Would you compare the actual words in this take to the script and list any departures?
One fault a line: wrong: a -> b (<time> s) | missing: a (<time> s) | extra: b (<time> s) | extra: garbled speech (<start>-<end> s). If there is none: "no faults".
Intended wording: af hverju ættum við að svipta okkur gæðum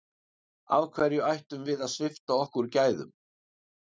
no faults